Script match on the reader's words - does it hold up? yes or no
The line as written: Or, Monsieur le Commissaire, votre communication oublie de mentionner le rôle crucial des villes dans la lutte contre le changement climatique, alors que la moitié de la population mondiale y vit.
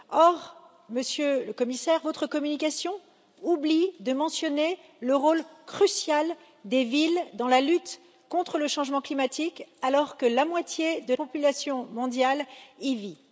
no